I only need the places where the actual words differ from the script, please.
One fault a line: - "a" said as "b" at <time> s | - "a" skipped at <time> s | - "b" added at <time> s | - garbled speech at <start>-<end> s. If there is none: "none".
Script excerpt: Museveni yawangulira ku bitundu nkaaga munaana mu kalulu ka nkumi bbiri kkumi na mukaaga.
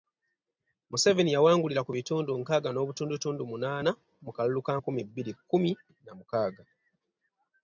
- "n'obutundutundu" added at 2.7 s